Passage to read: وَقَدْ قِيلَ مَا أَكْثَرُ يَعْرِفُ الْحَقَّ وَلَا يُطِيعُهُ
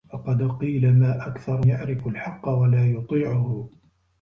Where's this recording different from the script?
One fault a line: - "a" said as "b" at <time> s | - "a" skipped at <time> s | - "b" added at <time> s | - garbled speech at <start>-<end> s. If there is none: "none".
none